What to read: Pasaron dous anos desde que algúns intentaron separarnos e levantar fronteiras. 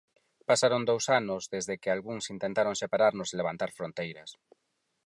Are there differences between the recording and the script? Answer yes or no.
no